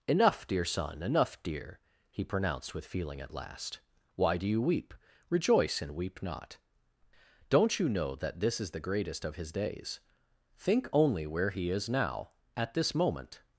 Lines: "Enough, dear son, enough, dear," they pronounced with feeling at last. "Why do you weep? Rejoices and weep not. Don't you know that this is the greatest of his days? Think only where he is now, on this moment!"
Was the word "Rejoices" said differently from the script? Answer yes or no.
yes